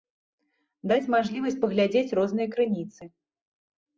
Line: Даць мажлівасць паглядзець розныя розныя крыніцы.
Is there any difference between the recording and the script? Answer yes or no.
yes